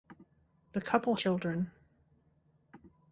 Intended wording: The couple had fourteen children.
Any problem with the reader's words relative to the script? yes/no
yes